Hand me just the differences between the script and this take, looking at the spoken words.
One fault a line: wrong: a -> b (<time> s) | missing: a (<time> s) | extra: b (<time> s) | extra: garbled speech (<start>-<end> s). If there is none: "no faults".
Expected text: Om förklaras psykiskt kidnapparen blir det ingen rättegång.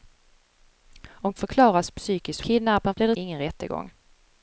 no faults